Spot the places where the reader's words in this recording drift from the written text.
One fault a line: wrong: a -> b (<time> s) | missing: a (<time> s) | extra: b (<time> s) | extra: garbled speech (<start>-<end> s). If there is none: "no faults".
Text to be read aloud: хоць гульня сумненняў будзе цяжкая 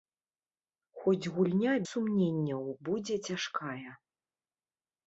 no faults